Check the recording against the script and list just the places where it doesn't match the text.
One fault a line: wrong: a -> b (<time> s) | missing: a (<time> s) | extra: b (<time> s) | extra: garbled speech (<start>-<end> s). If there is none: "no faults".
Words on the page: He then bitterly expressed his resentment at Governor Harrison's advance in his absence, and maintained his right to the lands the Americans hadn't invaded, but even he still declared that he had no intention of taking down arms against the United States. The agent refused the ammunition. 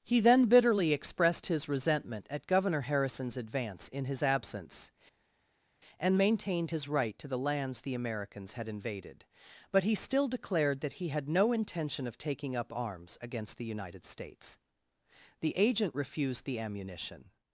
wrong: hadn't -> had (8.5 s)
missing: even (9.8 s)
wrong: down -> up (12.6 s)